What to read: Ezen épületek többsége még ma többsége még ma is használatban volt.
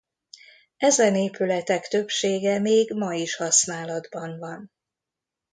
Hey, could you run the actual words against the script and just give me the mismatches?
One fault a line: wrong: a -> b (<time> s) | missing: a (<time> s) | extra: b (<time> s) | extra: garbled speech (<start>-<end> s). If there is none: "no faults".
missing: többsége még ma (3.1 s)
wrong: volt -> van (4.4 s)